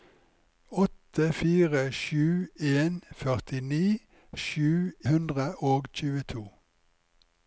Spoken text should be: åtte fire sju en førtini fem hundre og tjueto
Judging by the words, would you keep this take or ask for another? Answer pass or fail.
fail